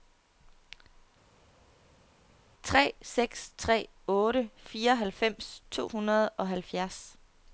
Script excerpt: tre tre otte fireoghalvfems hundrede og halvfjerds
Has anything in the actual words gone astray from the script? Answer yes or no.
yes